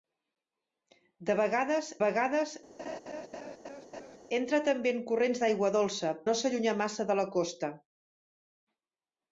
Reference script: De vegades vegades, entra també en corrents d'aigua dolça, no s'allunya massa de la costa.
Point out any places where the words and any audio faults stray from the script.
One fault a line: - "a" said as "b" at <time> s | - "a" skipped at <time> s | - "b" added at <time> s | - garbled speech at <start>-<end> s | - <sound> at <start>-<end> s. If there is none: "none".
- laugh at 2.8-4.2 s